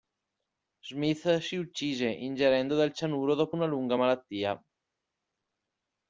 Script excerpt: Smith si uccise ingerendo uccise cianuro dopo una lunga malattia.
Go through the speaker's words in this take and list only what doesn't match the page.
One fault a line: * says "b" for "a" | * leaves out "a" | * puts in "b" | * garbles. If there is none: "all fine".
* says "del" for "uccise"